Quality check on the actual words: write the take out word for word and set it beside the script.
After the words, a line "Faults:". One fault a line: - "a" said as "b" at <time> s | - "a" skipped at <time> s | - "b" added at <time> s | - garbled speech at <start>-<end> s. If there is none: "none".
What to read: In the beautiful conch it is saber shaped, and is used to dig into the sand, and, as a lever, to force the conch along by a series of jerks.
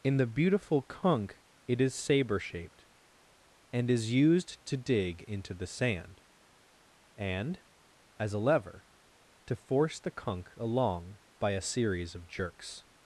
In the beautiful conch it is saber shaped, and is used to dig into the sand, and, as a lever, to force the conch along by a series of jerks.
Faults:
none